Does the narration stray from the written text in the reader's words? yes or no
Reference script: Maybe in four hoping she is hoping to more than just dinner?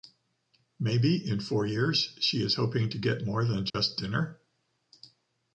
yes